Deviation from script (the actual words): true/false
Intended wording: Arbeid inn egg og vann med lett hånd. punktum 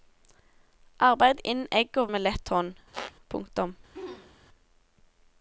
true